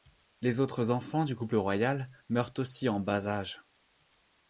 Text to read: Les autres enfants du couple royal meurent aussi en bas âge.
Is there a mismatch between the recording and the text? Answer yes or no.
no